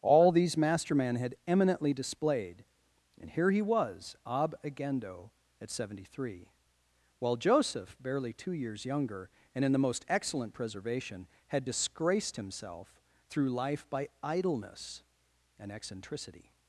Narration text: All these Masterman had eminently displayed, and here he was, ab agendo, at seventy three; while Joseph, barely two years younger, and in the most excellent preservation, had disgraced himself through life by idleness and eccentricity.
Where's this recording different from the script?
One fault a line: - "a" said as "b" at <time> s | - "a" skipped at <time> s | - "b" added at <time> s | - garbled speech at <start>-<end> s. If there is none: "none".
none